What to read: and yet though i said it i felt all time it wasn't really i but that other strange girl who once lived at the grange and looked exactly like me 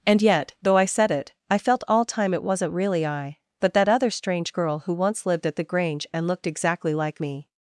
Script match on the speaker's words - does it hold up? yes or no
yes